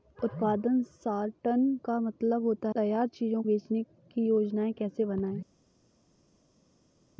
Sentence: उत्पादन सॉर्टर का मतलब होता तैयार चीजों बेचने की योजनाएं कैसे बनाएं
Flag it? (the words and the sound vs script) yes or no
no